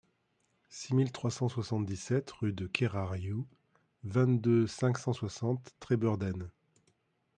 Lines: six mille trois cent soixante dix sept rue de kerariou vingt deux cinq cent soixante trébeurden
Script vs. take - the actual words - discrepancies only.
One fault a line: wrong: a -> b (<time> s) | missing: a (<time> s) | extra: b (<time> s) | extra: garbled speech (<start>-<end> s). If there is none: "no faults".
no faults